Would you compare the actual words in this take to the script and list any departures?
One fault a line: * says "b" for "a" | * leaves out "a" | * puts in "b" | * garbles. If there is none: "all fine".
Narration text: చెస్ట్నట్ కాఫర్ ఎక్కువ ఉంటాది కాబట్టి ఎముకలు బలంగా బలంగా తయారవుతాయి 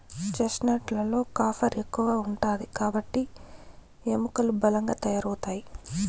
* puts in "లలో"
* leaves out "బలంగా"